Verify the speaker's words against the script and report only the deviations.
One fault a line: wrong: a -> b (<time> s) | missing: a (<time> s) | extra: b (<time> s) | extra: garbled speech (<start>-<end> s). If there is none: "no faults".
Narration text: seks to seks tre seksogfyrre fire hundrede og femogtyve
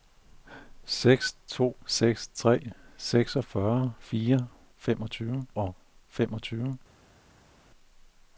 wrong: hundrede -> femogtyve (4.8 s)